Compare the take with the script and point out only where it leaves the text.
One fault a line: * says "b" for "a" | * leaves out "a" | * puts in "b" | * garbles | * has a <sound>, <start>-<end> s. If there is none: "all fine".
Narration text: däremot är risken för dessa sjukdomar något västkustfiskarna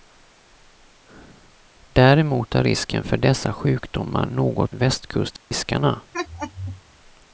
* has a dropout, 5.4-5.5 s
* has a laugh, 6.1-6.8 s